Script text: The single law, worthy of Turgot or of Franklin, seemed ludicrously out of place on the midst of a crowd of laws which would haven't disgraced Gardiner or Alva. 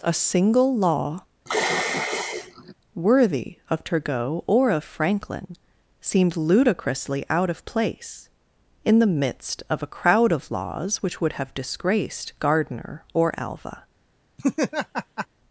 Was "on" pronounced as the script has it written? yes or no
no